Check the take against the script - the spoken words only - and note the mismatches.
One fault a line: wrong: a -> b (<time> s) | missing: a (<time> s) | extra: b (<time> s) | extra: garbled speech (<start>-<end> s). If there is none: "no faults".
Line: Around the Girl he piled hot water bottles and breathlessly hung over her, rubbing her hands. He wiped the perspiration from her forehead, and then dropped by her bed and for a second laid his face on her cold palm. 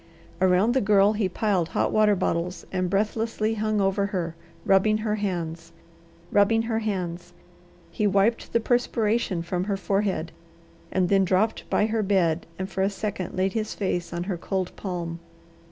extra: rubbing her hands (6.3 s)